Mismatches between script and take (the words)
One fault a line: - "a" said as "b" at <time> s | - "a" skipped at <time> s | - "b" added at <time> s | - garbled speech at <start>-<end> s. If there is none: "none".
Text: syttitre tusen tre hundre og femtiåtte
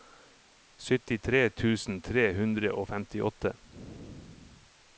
none